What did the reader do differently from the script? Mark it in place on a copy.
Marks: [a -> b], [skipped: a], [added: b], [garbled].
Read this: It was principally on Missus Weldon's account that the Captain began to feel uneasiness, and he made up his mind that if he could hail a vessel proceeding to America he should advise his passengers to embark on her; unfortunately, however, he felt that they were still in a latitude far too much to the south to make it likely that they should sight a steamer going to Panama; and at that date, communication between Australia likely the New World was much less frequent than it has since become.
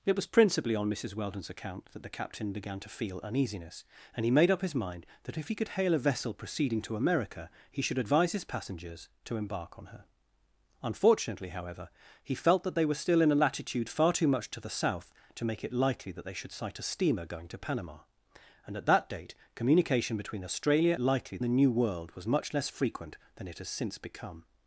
It was principally on Missus Weldon's account that the Captain began to feel uneasiness, and he made up his mind that if he could hail a vessel proceeding to America he should advise his passengers to embark on her; unfortunately, however, he felt that they were still in a latitude far too much to the south to make it likely that they should sight a steamer going to Panama; and at that date, communication between Australia likely the New World was much less frequent than it has since become.